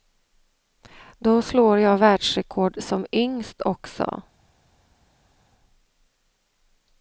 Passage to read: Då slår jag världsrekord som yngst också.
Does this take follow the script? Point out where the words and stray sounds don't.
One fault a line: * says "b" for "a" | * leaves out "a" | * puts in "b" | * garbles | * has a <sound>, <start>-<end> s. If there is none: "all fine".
all fine